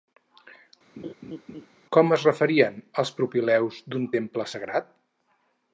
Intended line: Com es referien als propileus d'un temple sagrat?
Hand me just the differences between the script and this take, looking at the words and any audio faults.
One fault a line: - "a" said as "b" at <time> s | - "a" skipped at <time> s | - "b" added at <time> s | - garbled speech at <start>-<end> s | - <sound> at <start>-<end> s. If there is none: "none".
- laugh at 1.0-1.7 s